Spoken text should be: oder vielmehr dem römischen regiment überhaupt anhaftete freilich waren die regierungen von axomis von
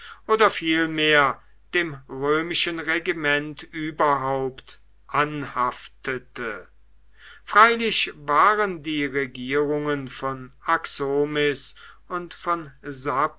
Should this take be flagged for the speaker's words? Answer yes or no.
yes